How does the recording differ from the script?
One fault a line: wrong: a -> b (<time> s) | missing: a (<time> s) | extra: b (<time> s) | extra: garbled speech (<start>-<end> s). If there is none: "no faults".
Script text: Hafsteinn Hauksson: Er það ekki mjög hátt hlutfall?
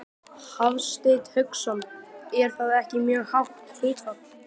no faults